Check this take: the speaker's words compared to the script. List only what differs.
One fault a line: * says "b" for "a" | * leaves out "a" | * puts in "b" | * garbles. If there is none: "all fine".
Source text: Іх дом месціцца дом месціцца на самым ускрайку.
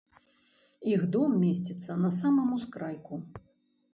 * leaves out "дом месціцца"